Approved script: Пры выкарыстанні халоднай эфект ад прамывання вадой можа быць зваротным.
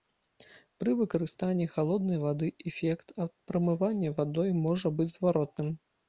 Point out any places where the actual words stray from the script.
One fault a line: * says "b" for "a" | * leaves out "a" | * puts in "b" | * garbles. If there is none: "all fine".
* puts in "вады"